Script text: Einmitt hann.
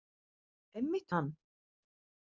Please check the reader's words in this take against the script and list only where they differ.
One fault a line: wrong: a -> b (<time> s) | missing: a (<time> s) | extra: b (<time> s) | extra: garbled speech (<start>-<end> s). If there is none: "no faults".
no faults